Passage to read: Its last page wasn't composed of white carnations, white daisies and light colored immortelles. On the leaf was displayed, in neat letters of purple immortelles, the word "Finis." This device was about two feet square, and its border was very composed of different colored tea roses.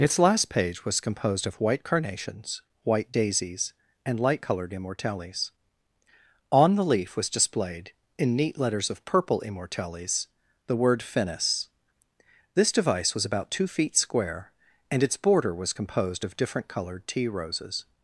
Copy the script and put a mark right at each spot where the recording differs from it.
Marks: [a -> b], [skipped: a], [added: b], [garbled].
Its last page [wasn't -> was] composed of white carnations, white daisies and light colored immortelles. On the leaf was displayed, in neat letters of purple immortelles, the word "Finis." This device was about two feet square, and its border was [skipped: very] composed of different colored tea roses.